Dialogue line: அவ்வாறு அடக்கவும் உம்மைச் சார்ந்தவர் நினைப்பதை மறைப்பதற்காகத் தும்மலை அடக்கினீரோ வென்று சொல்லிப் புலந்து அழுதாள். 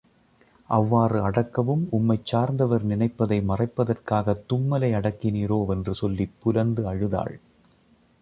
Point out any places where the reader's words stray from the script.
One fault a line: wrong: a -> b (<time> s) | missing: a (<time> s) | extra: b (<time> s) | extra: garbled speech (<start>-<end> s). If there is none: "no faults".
no faults